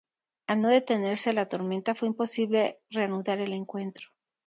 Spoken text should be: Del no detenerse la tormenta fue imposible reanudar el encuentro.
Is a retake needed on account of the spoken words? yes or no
yes